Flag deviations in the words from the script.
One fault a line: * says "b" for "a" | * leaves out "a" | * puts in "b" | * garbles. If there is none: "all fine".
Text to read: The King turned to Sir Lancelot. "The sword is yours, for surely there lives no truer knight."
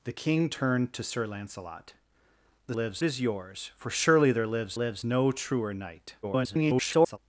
* says "lives" for "sword"
* puts in "lives"
* garbles